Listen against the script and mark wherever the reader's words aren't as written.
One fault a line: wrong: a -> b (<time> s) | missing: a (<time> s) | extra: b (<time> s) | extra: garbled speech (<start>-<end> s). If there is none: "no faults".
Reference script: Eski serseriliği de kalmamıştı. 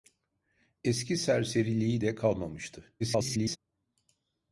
extra: garbled speech (3.0-3.6 s)